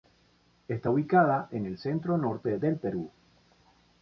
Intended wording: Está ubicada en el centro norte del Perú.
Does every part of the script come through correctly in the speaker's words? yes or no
yes